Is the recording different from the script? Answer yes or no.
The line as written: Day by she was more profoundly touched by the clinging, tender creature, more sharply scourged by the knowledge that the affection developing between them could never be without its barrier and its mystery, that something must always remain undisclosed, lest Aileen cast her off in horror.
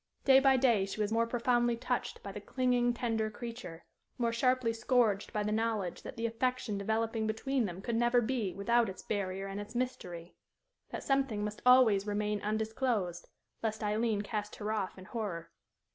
yes